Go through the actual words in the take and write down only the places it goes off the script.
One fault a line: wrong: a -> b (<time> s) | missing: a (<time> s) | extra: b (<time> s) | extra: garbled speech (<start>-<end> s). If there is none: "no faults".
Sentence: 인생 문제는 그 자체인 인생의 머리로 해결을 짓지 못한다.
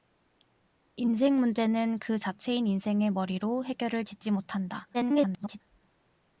extra: garbled speech (4.9-5.6 s)